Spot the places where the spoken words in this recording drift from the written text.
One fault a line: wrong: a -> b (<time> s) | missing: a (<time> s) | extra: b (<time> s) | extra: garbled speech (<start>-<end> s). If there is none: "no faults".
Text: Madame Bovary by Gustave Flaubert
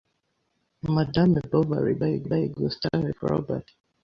extra: by (2.2 s)